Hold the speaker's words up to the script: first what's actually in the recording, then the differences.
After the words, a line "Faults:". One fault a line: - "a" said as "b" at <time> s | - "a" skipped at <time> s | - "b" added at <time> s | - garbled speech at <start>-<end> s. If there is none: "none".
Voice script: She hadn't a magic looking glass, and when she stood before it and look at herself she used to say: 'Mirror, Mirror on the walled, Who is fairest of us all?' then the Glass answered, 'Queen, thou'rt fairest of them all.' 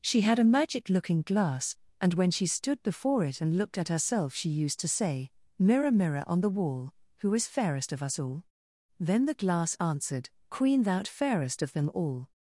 She had a magic looking glass, and when she stood before it and looked at herself she used to say: 'Mirror, Mirror on the wall, Who is fairest of us all?' then the Glass answered, 'Queen, thou'rt fairest of them all.'
Faults:
- "hadn't" said as "had" at 0.2 s
- "look" said as "looked" at 3.6 s
- "walled" said as "wall" at 6.5 s